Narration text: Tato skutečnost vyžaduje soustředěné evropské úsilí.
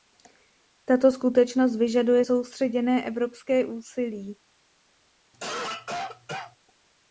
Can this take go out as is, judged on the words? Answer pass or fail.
pass